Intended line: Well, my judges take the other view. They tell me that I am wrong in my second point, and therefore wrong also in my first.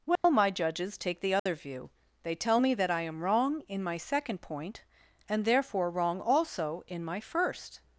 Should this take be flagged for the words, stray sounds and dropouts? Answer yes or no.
yes